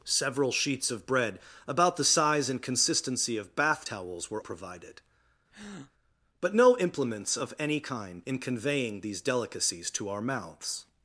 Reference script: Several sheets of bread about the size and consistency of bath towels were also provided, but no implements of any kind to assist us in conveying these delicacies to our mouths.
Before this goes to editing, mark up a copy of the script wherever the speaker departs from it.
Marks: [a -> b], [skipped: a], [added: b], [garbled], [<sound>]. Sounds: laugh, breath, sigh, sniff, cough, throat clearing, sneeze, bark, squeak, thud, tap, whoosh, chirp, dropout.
Several sheets of bread about the size and consistency of bath towels were [skipped: also] provided, [breath] but no implements of any kind [skipped: to assist us] in conveying these delicacies to our mouths.